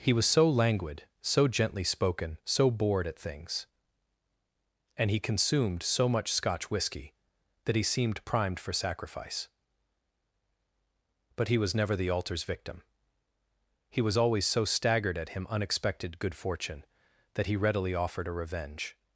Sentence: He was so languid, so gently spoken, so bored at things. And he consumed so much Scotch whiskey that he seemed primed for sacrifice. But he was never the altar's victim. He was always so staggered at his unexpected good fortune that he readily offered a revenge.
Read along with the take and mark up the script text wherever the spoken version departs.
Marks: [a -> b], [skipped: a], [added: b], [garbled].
He was so languid, so gently spoken, so bored at things. And he consumed so much Scotch whiskey that he seemed primed for sacrifice. But he was never the altar's victim. He was always so staggered at [his -> him] unexpected good fortune that he readily offered a revenge.